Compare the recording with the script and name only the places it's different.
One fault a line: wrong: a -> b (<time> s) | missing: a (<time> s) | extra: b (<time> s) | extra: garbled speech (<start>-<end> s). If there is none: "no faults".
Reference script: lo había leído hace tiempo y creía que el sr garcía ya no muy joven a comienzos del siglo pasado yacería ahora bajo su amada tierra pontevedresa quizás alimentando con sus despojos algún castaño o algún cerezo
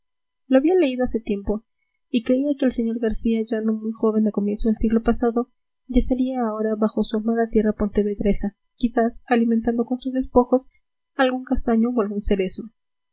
no faults